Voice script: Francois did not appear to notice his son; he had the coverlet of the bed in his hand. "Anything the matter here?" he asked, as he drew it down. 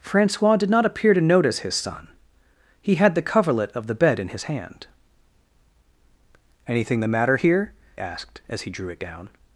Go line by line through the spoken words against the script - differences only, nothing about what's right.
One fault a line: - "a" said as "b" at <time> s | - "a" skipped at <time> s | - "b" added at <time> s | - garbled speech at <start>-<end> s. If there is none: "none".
- "he" skipped at 7.7 s